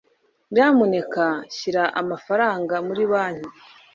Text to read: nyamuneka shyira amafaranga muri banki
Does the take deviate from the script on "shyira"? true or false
false